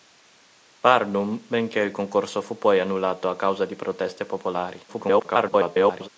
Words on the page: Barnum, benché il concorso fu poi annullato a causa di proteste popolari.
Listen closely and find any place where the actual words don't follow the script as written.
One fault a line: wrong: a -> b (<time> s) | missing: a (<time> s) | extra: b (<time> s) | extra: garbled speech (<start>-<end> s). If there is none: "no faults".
extra: garbled speech (4.9-6.1 s)